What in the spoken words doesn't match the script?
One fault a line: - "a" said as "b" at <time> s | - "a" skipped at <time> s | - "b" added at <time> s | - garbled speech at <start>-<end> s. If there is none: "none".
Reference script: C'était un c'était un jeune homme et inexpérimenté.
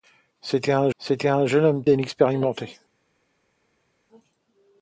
none